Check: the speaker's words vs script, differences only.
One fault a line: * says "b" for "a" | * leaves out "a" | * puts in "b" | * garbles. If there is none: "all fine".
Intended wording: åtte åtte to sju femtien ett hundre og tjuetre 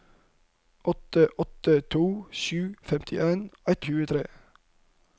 * leaves out "hundre"